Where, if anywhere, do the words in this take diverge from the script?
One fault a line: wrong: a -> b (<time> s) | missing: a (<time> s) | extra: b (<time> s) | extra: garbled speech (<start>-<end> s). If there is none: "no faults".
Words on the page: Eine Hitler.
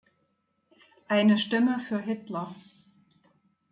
extra: Stimme für (1.3 s)